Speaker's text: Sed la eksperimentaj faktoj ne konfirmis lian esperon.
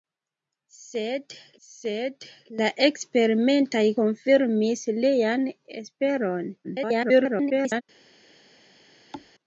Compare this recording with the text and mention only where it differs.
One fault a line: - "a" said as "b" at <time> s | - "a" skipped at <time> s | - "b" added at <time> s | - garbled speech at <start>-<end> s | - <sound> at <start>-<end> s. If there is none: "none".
- "sed" added at 1.7 s
- "faktoj ne" skipped at 3.8 s
- garbled speech at 6.6-7.8 s
- thud at 9.1-9.3 s